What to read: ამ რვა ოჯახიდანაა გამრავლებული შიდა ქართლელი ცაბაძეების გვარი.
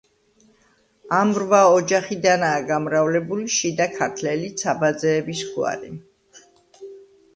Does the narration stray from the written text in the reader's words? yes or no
no